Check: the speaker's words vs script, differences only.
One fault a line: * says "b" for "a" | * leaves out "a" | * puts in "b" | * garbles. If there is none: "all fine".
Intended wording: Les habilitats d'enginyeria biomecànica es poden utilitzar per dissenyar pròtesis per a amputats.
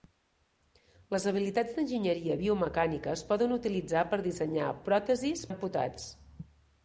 * leaves out "per"